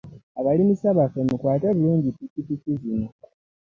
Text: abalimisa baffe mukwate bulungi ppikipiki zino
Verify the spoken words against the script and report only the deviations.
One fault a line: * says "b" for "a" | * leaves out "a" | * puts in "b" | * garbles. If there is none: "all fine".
all fine